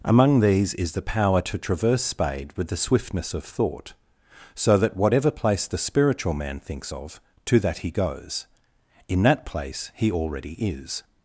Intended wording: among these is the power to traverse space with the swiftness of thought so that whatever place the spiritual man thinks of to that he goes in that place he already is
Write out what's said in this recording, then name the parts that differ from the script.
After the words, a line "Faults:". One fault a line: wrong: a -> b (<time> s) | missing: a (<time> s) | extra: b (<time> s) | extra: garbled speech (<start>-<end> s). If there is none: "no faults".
among these is the power to traverse spade with the swiftness of thought so that whatever place the spiritual man thinks of to that he goes in that place he already is
Faults:
wrong: space -> spade (2.0 s)